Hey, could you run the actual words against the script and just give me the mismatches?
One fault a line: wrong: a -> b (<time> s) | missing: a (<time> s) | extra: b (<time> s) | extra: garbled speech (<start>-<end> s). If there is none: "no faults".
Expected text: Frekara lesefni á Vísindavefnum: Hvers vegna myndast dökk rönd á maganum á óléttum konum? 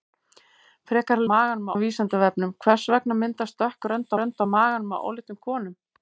wrong: lesefni -> maganum (1.3 s)
extra: rönd (4.2 s)